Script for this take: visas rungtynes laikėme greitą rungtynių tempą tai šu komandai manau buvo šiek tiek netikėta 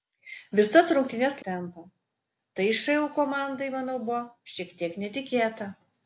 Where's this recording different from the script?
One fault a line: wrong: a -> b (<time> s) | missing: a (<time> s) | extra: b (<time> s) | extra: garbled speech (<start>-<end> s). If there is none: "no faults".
missing: laikėme greitą rungtynių (1.4 s)